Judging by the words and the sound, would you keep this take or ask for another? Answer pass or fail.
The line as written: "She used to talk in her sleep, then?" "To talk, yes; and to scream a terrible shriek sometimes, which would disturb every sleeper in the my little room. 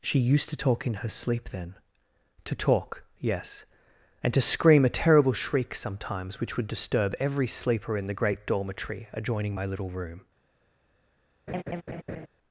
fail